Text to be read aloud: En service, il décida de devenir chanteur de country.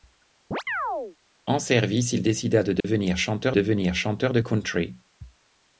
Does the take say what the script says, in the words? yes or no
no